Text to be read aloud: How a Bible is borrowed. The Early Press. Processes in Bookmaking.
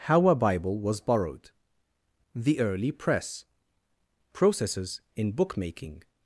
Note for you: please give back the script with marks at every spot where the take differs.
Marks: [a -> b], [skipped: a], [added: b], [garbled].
How a Bible [is -> was] borrowed. The Early Press. Processes in Bookmaking.